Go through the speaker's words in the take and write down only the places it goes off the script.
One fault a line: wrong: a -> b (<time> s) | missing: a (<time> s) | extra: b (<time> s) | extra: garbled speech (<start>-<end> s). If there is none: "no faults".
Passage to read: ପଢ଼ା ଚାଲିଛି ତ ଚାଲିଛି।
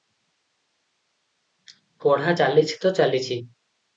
no faults